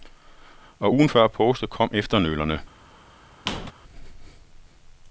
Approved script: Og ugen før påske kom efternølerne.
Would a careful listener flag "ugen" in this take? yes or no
no